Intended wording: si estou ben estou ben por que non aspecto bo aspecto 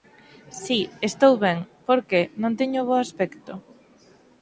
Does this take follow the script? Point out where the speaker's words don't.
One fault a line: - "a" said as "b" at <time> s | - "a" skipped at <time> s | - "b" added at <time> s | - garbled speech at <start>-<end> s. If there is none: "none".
- "estou ben" skipped at 1.6 s
- "aspecto" said as "teño" at 2.6 s